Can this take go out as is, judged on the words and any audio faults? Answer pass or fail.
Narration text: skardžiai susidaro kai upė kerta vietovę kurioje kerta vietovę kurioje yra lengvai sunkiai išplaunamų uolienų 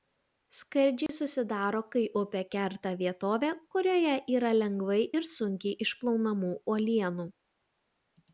fail